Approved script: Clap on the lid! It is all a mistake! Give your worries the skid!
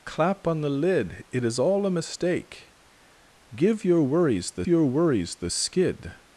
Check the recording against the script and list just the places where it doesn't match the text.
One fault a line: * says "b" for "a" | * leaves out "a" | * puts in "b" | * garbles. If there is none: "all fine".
* puts in "your worries the"